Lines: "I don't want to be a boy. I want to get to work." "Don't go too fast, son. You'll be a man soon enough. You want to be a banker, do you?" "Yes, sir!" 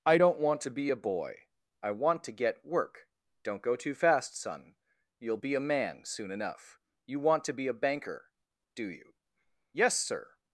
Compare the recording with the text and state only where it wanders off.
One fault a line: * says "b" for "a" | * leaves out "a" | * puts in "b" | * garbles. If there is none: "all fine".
* leaves out "to"